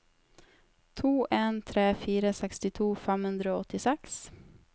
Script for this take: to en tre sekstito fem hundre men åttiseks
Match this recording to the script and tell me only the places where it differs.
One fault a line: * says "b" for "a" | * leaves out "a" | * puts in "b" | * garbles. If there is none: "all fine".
* puts in "fire"
* says "og" for "men"